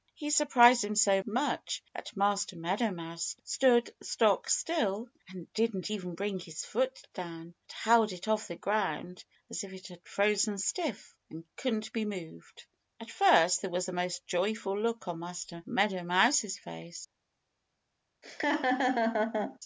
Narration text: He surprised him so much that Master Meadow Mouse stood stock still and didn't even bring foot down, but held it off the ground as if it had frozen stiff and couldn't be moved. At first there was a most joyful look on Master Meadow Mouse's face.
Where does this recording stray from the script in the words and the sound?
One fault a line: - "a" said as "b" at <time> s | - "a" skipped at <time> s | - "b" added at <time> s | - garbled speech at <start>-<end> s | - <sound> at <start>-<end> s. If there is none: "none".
- "his" added at 6.4 s
- laugh at 18.2-19.6 s